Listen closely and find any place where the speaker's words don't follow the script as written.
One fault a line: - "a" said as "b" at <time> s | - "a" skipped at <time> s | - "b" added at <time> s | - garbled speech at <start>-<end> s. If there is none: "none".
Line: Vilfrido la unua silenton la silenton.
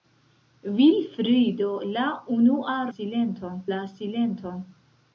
none